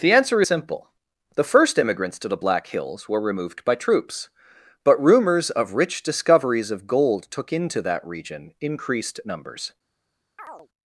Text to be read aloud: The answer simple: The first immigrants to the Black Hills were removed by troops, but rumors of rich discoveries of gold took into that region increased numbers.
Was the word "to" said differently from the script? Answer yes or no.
no